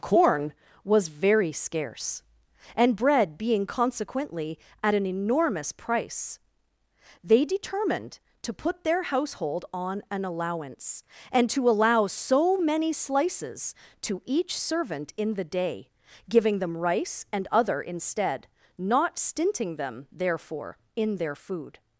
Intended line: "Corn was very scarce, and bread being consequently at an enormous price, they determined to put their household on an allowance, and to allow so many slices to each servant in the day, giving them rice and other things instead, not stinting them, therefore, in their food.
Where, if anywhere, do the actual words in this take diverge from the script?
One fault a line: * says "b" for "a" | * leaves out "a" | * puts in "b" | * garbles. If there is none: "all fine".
* leaves out "things"